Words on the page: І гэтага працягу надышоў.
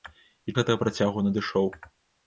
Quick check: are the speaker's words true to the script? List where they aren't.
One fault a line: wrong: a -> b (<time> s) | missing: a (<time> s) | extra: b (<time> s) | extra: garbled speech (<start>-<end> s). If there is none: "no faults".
no faults